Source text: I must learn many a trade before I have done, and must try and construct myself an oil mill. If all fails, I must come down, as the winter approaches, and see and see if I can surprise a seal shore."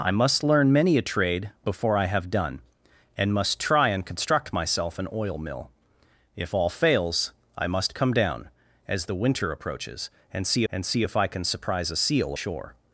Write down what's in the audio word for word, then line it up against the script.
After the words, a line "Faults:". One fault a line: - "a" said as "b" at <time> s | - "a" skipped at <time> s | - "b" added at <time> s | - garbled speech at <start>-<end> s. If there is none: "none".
I must learn many a trade before I have done, and must try and construct myself an oil mill. If all fails, I must come down, as the winter approaches, and see and see if I can surprise a seal shore."
Faults:
none